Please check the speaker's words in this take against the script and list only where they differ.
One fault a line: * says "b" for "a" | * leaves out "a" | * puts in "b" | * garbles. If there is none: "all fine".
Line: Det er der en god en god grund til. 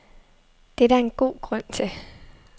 * leaves out "en god"